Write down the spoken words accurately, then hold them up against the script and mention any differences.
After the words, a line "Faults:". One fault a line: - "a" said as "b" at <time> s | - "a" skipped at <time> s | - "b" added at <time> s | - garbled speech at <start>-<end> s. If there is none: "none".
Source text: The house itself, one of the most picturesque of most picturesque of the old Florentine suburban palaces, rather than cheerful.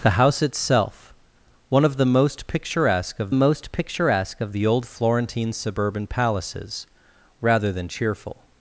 The house itself, one of the most picturesque of most picturesque of the old Florentine suburban palaces, rather than cheerful.
Faults:
none